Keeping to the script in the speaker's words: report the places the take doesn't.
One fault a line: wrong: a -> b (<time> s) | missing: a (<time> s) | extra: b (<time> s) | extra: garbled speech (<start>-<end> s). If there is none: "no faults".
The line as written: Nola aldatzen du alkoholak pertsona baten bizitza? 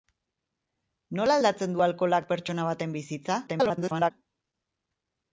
extra: garbled speech (3.5-4.1 s)